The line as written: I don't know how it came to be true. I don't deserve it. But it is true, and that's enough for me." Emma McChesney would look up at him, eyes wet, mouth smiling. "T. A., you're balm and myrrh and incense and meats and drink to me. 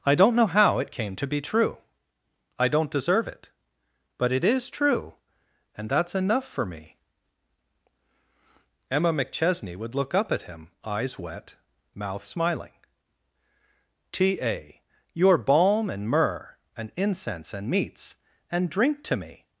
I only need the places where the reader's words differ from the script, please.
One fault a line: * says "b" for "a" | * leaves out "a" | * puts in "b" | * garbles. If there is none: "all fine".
all fine